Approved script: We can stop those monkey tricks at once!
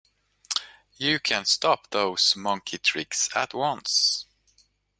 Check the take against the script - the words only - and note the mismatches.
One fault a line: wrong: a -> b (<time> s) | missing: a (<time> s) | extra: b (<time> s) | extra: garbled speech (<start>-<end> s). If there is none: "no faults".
wrong: We -> You (0.9 s)